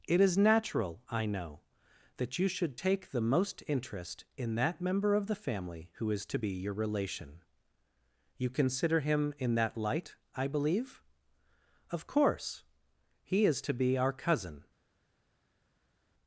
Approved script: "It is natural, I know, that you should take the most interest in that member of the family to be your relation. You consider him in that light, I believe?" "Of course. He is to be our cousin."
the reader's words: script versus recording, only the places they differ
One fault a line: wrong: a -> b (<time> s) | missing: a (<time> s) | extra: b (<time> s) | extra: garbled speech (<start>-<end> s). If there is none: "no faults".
extra: who is (5.9 s)